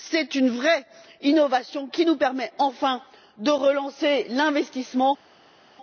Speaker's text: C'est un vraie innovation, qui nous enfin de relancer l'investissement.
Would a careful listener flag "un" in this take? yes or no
yes